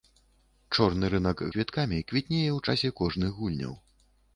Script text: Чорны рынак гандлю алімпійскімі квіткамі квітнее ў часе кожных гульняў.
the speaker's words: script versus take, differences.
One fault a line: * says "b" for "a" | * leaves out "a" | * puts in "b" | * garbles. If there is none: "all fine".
* leaves out "гандлю алімпійскімі"